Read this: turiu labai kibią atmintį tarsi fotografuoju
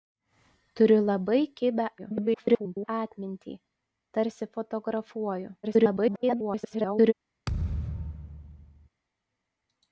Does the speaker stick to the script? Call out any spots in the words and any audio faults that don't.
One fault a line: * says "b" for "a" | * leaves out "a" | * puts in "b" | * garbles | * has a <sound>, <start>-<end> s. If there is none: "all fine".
* garbles
* garbles
* has a thud, 7.5-8.9 s